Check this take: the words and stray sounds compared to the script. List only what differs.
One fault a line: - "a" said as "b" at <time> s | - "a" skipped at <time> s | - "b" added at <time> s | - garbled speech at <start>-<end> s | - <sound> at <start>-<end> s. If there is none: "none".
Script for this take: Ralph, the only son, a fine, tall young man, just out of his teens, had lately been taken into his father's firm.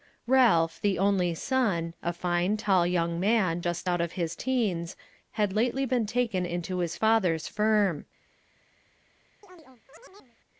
- chirp at 9.4-10.4 s